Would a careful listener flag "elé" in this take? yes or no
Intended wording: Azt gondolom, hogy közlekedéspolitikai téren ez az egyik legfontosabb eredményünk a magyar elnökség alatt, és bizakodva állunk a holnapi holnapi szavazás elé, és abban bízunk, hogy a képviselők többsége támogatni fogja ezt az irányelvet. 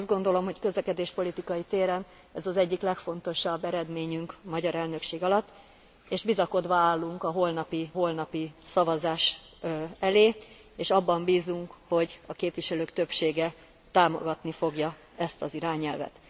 no